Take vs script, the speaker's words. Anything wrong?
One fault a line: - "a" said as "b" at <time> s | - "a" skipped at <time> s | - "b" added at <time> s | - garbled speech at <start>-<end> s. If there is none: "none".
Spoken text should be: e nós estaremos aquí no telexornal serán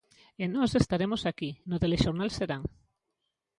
none